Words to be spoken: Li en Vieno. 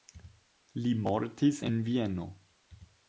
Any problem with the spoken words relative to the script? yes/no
yes